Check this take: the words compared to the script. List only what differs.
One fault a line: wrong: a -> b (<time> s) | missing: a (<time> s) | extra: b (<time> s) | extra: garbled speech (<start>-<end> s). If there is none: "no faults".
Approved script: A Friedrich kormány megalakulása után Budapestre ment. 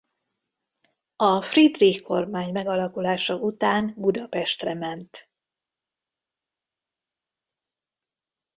no faults